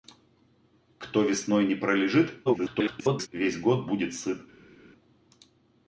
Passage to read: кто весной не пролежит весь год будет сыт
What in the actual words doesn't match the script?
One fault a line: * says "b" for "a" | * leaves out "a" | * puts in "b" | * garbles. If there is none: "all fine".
* garbles